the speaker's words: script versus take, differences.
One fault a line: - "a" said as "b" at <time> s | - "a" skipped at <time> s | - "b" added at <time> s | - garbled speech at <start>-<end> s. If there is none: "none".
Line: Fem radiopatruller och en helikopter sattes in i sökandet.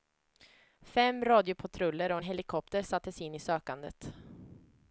none